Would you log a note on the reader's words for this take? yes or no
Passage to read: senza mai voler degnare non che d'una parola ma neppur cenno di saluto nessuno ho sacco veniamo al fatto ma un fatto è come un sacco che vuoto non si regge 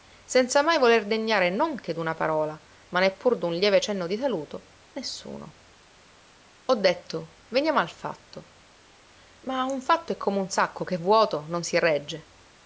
yes